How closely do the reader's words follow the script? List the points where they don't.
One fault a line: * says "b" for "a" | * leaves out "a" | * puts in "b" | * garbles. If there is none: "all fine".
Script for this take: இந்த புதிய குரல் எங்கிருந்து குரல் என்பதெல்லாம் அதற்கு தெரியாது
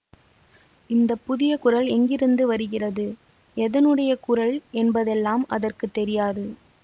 * puts in "வருகிறது எதனுடைய"